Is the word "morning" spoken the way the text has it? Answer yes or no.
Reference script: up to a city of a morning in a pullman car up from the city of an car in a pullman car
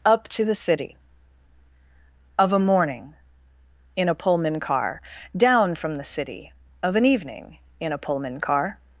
yes